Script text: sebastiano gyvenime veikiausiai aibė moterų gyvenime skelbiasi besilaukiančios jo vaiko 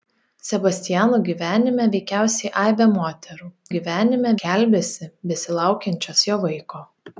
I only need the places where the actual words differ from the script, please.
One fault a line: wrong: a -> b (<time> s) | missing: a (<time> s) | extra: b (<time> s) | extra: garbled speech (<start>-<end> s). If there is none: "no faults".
no faults